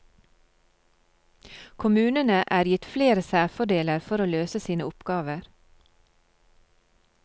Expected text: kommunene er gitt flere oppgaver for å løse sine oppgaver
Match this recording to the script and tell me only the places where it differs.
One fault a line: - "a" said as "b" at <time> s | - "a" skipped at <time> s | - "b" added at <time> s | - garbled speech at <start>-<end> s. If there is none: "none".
- "oppgaver" said as "særfordeler" at 3.3 s